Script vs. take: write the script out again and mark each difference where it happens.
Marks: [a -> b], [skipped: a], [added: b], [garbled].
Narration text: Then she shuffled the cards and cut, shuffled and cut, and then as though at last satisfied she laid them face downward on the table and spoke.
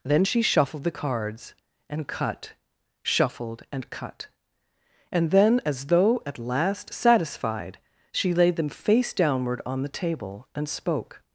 Then she shuffled the cards and cut, shuffled and cut, and then as though at last satisfied she laid them face downward on the table and spoke.